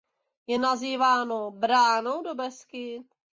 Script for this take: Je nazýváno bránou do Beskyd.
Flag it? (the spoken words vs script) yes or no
no